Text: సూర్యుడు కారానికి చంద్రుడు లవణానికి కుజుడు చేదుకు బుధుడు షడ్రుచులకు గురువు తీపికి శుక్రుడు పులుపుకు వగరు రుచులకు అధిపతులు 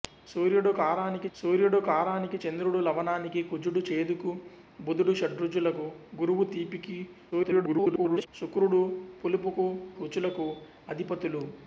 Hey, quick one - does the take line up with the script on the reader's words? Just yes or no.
no